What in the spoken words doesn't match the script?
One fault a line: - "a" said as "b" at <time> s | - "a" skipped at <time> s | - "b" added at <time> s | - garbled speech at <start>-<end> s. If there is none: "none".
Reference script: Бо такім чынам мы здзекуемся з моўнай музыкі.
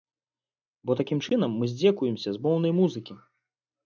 none